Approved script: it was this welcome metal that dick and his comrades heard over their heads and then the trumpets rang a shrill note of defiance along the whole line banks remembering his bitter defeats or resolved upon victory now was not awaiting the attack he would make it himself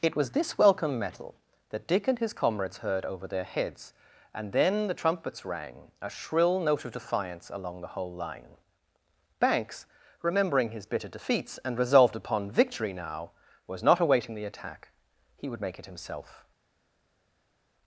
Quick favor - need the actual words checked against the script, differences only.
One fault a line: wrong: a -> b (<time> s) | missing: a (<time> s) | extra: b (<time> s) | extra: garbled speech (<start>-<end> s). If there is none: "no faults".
wrong: or -> and (11.7 s)